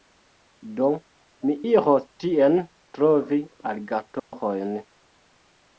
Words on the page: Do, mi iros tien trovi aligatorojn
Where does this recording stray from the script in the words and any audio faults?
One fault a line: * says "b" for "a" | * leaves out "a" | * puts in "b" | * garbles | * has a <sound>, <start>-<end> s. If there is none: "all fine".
* has a dropout, 4.2-4.3 s